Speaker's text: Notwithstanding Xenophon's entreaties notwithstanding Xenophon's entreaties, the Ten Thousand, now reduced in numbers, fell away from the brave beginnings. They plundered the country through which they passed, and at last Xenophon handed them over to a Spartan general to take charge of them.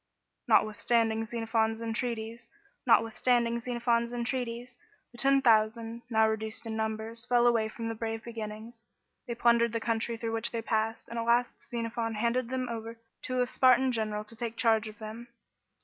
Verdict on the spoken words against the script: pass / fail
pass